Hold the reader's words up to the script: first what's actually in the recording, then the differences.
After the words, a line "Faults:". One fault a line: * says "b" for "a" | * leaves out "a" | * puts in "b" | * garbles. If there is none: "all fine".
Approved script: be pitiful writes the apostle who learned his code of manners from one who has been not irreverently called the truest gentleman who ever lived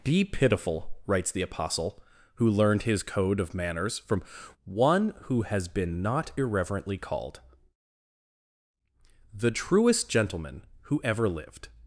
be pitiful writes the apostle who learned his code of manners from one who has been not irreverently called the truest gentleman who ever lived
Faults:
all fine